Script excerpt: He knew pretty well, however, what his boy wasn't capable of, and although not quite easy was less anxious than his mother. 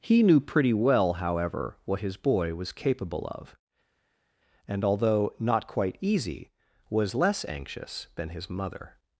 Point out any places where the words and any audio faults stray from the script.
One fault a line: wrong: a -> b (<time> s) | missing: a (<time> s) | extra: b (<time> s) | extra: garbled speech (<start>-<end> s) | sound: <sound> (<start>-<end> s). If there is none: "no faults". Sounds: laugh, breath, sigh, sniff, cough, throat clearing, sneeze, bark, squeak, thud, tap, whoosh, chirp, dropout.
wrong: wasn't -> was (2.5 s)